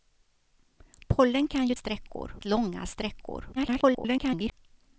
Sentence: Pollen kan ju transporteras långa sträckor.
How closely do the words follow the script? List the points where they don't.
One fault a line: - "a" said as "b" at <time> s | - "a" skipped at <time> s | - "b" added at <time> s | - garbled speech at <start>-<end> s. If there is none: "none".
- "transporteras" said as "sträckor" at 1.7 s
- garbled speech at 3.6-4.5 s